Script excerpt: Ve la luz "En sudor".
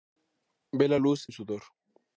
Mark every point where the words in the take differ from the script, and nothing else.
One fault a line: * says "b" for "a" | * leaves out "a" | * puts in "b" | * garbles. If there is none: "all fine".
all fine